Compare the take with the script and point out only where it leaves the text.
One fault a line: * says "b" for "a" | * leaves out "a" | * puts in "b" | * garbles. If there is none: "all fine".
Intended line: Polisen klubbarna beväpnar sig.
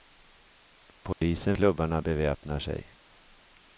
all fine